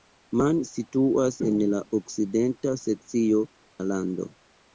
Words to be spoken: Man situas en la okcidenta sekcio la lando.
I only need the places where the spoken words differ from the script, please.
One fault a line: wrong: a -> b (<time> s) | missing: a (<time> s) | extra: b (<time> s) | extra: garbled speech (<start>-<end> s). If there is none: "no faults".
no faults